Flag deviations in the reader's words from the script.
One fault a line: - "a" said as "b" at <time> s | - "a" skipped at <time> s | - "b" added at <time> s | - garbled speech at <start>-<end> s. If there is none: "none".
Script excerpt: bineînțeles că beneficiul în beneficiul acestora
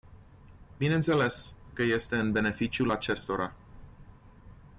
- "beneficiul" said as "este" at 1.8 s